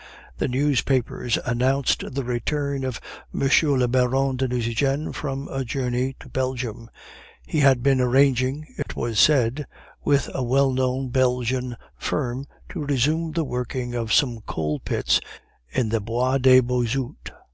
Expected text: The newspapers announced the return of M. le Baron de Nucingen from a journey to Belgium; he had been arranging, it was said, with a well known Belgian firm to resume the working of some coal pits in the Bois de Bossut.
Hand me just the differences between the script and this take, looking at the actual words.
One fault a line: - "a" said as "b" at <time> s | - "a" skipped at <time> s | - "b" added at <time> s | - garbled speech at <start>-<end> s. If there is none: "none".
none